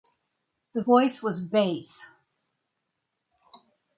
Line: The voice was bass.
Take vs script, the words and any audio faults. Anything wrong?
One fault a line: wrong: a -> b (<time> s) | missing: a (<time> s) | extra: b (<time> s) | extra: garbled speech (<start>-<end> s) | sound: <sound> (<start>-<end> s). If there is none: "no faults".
no faults